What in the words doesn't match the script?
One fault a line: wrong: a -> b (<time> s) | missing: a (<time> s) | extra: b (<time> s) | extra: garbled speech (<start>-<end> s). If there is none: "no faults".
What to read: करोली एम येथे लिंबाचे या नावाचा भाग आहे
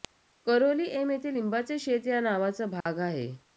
extra: शेत (1.8 s)